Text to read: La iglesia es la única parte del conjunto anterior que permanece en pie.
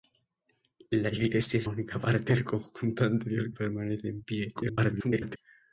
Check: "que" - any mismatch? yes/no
yes